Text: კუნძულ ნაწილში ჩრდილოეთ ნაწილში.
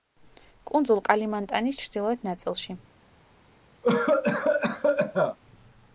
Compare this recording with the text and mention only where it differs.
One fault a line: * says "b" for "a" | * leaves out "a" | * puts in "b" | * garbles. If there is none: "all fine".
* says "კალიმანტანის" for "ნაწილში"